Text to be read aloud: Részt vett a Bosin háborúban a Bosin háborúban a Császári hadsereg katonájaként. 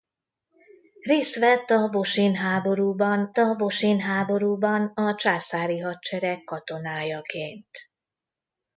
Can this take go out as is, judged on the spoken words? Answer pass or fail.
pass